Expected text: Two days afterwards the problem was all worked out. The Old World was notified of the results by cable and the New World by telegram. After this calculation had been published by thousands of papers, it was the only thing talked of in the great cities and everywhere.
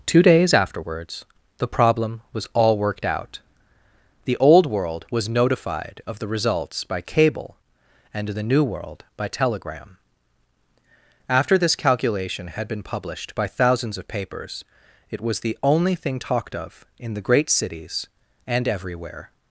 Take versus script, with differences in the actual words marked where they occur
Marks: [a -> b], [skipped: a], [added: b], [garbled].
Two days afterwards the problem was all worked out. The Old World was notified of the results by cable and the New World by telegram. After this calculation had been published by thousands of papers, it was the only thing talked of in the great cities and everywhere.